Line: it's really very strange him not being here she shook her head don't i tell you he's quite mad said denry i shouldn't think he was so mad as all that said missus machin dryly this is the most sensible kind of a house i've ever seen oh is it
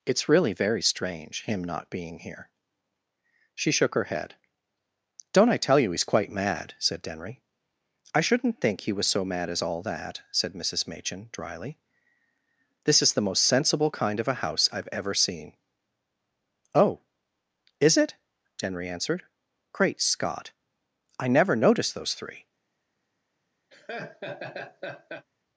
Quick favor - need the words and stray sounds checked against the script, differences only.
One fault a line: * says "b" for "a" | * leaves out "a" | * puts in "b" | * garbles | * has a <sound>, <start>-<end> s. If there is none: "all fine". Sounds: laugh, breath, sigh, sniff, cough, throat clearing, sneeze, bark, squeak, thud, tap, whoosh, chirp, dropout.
* puts in "denry answered great scott i never noticed those three"
* has a laugh, 23.7-25.3 s